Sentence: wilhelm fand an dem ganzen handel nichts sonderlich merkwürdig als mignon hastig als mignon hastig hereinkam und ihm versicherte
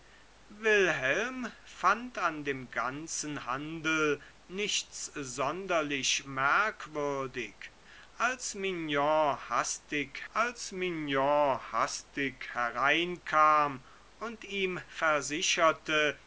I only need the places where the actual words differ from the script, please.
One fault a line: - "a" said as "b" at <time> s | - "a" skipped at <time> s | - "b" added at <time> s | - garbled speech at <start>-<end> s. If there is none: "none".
none